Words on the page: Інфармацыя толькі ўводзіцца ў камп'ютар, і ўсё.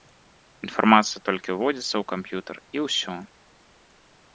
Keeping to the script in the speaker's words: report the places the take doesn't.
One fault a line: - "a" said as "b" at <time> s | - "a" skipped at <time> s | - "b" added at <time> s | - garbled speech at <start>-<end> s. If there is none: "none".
none